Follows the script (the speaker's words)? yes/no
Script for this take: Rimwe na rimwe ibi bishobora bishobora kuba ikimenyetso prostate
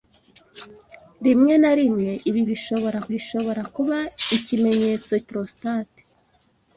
yes